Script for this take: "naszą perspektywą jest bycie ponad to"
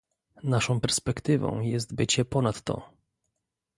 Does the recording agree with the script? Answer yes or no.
yes